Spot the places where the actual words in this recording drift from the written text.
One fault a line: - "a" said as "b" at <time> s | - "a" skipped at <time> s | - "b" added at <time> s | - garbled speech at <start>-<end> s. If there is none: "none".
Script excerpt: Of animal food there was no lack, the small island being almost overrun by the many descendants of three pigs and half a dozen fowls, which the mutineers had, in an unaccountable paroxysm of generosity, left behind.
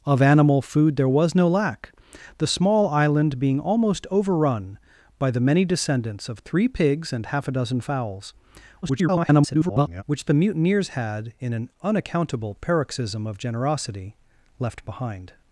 - garbled speech at 8.8-10.0 s